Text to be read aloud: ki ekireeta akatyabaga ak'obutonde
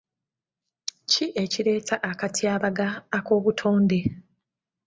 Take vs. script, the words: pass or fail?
pass